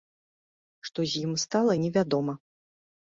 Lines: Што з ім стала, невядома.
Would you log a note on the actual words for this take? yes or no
no